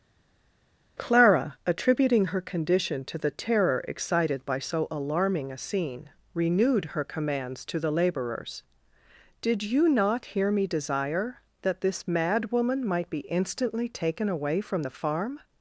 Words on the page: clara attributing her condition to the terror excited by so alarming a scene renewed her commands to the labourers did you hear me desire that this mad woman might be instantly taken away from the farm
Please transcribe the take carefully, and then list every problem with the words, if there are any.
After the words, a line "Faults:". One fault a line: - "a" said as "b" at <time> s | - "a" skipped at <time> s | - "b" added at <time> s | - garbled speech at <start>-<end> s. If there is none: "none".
clara attributing her condition to the terror excited by so alarming a scene renewed her commands to the labourers did you not hear me desire that this mad woman might be instantly taken away from the farm
Faults:
- "not" added at 9.9 s